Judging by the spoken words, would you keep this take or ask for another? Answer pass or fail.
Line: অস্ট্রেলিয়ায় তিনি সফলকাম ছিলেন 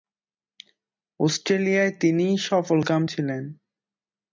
pass